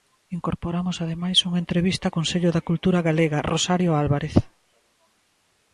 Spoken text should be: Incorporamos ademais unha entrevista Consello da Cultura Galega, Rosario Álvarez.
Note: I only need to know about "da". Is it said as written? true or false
true